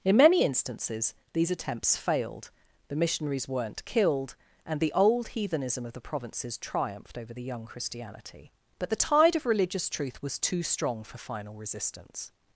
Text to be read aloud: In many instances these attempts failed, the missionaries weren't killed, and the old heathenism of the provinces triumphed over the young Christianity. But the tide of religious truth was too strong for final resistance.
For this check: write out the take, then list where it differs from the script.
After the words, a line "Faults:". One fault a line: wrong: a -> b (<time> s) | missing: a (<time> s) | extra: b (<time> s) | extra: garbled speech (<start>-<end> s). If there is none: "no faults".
In many instances these attempts failed, the missionaries weren't killed, and the old heathenism of the provinces triumphed over the young Christianity. But the tide of religious truth was too strong for final resistance.
Faults:
no faults